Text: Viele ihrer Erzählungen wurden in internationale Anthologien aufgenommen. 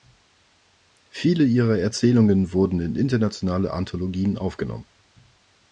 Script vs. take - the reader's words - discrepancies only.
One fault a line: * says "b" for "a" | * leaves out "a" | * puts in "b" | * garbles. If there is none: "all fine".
all fine